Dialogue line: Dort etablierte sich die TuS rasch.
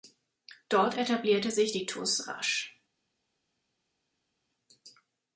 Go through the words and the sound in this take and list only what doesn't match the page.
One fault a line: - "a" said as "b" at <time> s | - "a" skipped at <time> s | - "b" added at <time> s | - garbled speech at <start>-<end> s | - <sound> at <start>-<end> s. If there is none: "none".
none